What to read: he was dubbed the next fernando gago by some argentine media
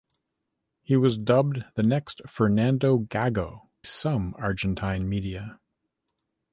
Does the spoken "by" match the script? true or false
false